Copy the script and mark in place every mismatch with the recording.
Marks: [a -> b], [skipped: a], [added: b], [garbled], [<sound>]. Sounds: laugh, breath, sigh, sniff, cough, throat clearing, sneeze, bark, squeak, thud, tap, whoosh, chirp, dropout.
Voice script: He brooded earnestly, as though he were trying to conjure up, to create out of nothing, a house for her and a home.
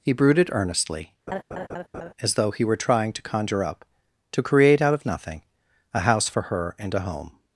He brooded earnestly, [laugh] as though he were trying to conjure up, to create out of nothing, a house for her and a home.